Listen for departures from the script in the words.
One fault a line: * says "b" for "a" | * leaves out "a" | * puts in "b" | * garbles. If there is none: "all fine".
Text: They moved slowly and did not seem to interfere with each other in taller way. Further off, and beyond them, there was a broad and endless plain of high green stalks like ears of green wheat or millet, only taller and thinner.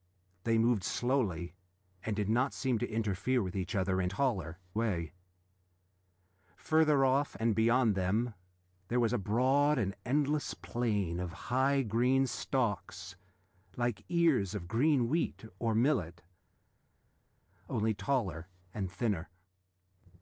all fine